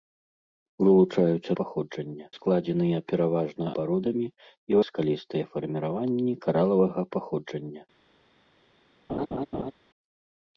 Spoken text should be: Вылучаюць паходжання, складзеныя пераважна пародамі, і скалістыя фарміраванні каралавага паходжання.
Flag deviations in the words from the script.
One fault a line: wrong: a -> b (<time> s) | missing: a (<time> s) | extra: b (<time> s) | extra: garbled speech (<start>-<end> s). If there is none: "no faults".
no faults